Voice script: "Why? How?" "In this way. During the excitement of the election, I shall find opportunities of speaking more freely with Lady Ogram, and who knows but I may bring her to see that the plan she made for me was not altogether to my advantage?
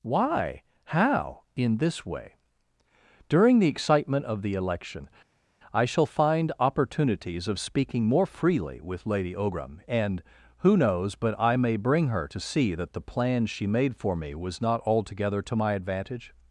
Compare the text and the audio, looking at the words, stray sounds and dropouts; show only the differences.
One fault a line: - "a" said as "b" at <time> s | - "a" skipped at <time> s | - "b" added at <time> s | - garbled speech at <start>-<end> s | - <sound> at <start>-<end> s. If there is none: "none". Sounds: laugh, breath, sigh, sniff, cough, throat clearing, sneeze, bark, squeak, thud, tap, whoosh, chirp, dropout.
none